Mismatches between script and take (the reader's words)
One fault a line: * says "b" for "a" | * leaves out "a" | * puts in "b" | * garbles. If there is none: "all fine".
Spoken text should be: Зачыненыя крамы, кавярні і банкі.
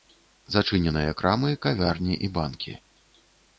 all fine